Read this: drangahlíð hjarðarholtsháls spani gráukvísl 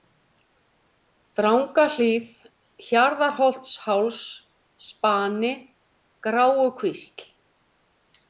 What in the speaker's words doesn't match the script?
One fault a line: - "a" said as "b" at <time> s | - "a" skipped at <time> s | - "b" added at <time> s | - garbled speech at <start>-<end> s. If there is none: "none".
none